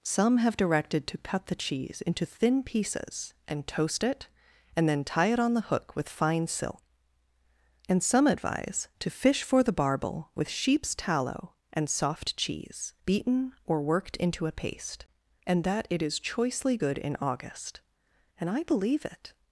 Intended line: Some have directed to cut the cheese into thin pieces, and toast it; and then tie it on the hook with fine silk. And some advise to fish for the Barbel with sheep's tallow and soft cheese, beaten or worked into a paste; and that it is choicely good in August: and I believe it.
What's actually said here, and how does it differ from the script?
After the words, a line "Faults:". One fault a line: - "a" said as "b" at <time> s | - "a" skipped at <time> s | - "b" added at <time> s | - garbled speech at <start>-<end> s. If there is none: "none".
Some have directed to cut the cheese into thin pieces, and toast it; and then tie it on the hook with fine silk. And some advise to fish for the Barbel with sheep's tallow and soft cheese, beaten or worked into a paste; and that it is choicely good in August: and I believe it.
Faults:
none